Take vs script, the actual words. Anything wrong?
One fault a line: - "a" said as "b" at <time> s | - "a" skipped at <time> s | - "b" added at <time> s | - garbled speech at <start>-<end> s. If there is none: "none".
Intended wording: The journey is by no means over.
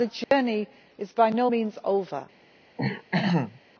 none